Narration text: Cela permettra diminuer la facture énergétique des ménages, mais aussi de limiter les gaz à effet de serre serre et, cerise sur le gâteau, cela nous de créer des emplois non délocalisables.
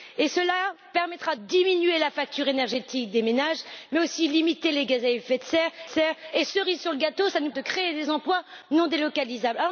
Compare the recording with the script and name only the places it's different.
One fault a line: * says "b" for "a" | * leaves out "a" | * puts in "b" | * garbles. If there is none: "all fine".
all fine